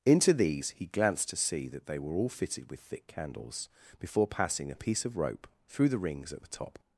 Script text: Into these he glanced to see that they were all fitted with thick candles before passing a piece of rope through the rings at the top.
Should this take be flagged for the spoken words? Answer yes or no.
no